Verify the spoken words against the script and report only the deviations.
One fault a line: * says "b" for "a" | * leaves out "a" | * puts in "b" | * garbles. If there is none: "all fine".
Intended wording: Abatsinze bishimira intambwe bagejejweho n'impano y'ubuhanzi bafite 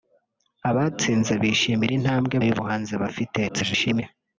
* leaves out "bagejejweho n'impano"
* garbles